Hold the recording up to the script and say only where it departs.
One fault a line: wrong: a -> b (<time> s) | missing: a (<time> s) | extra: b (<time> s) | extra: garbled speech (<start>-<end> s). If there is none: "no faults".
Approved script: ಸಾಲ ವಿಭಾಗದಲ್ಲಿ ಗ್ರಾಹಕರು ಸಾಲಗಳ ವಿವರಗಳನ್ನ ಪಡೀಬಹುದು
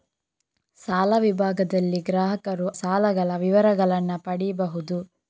no faults